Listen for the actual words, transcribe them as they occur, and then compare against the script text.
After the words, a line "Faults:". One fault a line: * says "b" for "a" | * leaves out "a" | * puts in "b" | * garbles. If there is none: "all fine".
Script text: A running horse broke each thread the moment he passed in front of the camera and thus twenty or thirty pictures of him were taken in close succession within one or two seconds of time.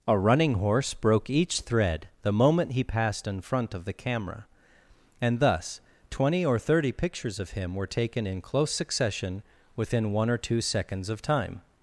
A running horse broke each thread the moment he passed in front of the camera and thus twenty or thirty pictures of him were taken in close succession within one or two seconds of time.
Faults:
all fine